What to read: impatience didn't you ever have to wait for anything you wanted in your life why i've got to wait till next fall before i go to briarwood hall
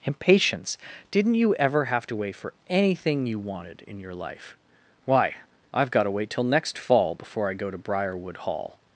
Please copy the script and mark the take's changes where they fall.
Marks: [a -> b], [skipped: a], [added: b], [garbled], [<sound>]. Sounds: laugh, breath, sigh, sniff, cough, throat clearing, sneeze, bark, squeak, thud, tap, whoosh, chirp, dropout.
impatience didn't you ever have to wait for anything you wanted in your life why i've got to wait till next fall before i go to briarwood hall